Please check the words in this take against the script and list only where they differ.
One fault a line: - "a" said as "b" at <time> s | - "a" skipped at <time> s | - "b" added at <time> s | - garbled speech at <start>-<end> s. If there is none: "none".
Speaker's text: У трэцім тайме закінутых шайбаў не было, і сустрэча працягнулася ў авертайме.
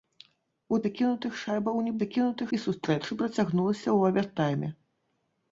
- "трэцім тайме" skipped at 0.8 s
- "было" said as "закінутых" at 2.0 s